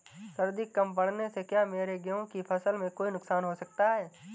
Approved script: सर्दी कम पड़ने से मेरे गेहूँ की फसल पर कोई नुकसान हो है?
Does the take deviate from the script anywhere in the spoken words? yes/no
yes